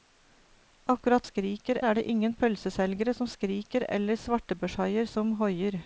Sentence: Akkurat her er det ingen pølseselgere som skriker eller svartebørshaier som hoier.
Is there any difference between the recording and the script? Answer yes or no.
yes